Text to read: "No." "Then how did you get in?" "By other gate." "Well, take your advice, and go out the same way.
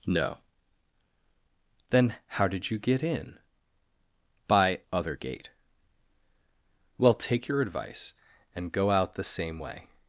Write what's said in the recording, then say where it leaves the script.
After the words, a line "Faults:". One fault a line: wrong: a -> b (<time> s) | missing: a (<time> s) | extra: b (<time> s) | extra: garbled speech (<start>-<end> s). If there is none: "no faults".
"No." "Then how did you get in?" "By other gate." "Well, take your advice, and go out the same way.
Faults:
no faults